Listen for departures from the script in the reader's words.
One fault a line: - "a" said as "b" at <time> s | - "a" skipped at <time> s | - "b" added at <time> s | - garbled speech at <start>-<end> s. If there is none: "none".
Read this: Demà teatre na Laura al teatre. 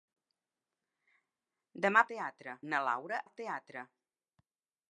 none